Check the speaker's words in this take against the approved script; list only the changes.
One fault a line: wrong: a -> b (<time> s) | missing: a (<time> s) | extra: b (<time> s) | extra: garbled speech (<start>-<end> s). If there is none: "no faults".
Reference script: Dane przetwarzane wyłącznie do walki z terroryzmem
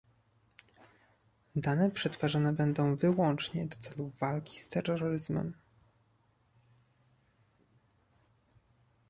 extra: będą (2.5 s)
extra: celów (3.8 s)